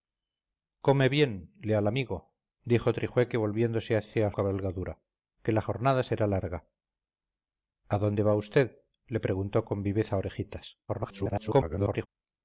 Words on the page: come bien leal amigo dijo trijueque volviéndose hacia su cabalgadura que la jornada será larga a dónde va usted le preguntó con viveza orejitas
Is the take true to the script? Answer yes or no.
no